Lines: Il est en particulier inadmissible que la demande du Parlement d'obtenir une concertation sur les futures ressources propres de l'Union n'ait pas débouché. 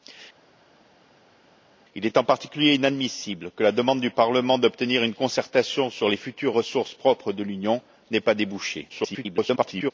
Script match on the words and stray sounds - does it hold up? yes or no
no